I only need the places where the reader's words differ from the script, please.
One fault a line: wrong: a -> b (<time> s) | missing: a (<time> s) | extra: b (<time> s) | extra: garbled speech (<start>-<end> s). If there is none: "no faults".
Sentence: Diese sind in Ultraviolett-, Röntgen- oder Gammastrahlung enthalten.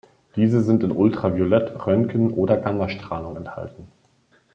no faults